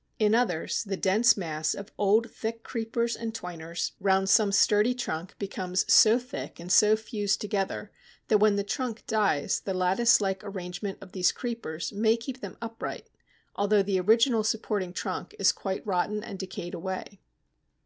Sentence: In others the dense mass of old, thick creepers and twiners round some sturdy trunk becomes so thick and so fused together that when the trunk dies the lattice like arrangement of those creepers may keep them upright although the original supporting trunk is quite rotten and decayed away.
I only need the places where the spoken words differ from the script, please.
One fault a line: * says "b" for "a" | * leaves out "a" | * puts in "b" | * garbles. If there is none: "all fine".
* says "these" for "those"